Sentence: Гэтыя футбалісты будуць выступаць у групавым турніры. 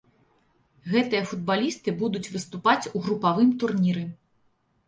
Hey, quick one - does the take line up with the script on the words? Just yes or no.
yes